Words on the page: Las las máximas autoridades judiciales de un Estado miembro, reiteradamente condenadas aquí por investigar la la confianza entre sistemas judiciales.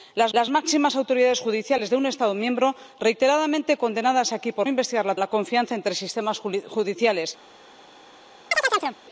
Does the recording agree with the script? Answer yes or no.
yes